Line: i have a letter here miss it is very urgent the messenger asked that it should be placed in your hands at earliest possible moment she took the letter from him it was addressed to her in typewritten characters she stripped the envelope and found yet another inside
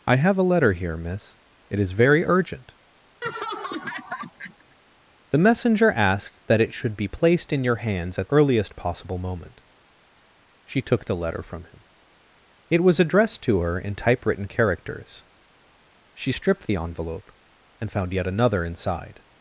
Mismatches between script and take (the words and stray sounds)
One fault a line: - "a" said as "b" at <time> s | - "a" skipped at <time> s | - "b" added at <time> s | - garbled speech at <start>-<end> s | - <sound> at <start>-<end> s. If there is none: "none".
- laugh at 3.2-4.8 s